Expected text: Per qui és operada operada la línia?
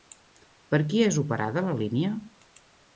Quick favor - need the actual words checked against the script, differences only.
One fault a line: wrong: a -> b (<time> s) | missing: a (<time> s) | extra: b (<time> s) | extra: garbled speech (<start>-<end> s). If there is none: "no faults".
missing: operada (1.6 s)